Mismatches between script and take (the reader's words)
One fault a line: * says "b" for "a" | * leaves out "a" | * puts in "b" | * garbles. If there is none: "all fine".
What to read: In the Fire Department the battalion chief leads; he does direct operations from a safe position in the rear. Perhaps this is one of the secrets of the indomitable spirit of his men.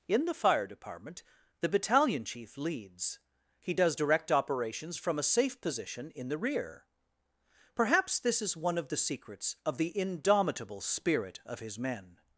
all fine